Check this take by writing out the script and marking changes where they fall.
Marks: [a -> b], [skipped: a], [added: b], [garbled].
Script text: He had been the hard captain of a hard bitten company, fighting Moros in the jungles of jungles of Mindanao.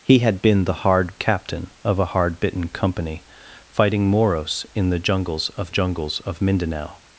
He had been the hard captain of a hard bitten company, fighting Moros in the jungles of jungles of Mindanao.